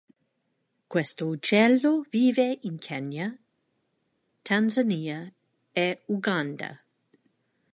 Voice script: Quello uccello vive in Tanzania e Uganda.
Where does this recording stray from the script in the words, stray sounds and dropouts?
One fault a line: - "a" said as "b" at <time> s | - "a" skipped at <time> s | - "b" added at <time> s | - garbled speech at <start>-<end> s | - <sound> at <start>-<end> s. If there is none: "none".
- "Quello" said as "Questo" at 0.9 s
- "Kenya" added at 2.8 s